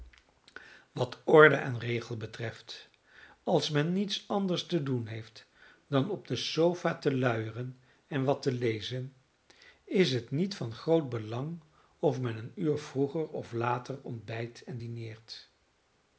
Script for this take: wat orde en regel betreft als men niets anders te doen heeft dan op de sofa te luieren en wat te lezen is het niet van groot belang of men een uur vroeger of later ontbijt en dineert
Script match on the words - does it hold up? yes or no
yes